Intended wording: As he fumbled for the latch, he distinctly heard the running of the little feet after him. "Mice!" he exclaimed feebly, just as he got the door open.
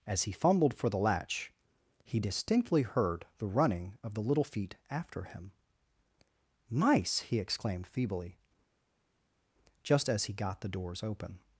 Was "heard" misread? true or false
false